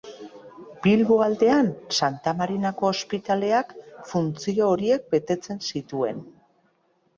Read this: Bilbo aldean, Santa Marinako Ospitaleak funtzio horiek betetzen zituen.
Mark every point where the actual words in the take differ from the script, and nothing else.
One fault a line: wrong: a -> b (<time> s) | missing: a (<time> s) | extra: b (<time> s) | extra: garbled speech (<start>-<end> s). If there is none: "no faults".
no faults